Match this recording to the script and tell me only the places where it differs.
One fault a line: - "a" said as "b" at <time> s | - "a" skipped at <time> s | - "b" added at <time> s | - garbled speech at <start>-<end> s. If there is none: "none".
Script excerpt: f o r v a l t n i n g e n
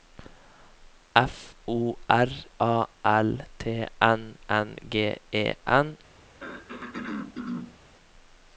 - "v" skipped at 2.3 s
- "i" skipped at 4.4 s